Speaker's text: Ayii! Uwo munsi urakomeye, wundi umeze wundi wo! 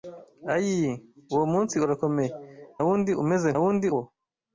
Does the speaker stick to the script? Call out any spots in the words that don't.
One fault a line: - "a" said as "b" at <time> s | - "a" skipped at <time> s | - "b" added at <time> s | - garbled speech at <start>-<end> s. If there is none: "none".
none